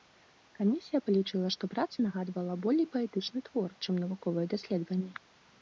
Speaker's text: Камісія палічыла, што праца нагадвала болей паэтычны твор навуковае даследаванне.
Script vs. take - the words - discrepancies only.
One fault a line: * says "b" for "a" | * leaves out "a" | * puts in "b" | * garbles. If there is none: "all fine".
* puts in "чым"